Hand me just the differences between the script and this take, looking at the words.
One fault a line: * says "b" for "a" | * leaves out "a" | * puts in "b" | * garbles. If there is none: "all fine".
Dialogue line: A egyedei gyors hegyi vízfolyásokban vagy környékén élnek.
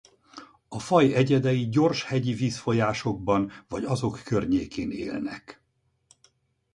* puts in "faj"
* puts in "azok"